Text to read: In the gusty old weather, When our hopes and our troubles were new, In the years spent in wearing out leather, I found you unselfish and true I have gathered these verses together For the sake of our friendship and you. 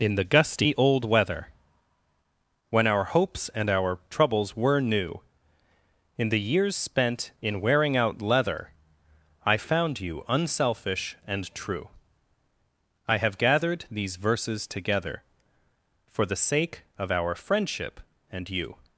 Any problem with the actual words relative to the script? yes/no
no